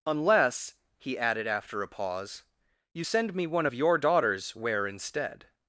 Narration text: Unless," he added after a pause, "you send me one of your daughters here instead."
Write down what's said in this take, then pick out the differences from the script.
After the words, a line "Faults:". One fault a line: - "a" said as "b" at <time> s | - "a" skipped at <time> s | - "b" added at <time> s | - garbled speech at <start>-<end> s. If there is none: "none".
Unless," he added after a pause, "you send me one of your daughters where instead."
Faults:
- "here" said as "where" at 4.5 s